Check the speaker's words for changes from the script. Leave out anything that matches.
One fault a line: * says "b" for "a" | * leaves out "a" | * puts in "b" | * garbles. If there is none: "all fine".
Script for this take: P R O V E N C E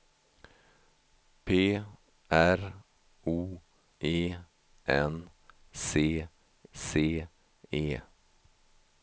* leaves out "V"
* puts in "C"